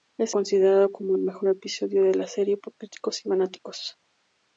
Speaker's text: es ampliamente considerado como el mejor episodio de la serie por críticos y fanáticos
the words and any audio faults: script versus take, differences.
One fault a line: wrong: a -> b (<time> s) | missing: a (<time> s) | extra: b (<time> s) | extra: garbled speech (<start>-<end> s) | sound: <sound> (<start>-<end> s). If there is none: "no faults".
missing: ampliamente (0.3 s)